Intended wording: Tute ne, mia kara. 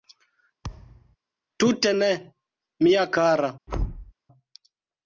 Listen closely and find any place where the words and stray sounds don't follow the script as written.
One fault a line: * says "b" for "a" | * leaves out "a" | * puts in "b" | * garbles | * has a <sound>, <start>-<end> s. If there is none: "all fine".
* has a thud, 0.6-1.2 s
* has a thud, 3.7-4.1 s